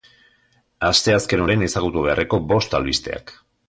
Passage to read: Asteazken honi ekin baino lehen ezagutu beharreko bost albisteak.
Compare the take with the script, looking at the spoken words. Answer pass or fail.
fail